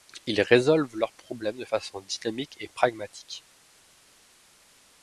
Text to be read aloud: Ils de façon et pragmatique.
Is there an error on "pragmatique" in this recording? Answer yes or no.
no